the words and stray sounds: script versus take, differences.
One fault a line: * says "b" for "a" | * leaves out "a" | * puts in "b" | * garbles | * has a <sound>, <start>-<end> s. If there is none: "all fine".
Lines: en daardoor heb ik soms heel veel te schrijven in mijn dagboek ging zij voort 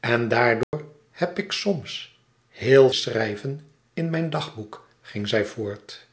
* has a dropout, 0.6-0.7 s
* leaves out "veel te"